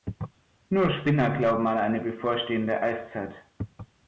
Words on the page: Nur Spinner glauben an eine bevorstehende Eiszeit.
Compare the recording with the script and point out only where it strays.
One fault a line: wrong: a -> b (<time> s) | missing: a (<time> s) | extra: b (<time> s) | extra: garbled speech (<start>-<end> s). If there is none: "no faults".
no faults